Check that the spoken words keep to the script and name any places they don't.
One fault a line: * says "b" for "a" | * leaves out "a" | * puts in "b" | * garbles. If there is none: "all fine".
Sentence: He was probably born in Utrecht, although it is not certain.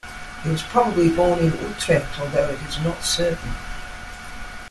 all fine